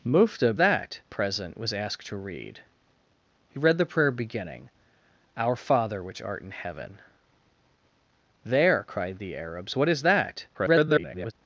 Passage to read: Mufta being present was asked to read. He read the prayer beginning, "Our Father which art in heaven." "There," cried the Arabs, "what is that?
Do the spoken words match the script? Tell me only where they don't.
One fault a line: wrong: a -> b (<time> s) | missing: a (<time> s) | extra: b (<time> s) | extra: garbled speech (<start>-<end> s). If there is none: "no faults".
wrong: being -> that (0.6 s)
extra: garbled speech (10.5-11.3 s)